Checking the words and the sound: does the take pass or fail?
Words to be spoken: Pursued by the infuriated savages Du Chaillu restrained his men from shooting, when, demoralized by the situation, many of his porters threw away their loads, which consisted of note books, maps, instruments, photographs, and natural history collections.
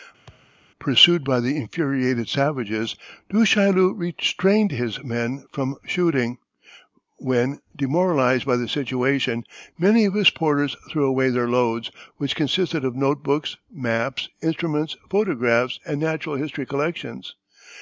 fail